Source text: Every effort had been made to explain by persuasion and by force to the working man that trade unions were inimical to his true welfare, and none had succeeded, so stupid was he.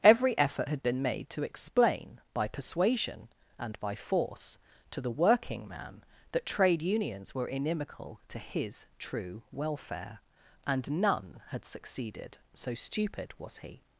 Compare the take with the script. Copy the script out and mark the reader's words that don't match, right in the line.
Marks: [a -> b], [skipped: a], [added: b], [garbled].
Every effort had been made to explain by persuasion and by force to the working man that trade unions were inimical to his true welfare, and none had succeeded, so stupid was he.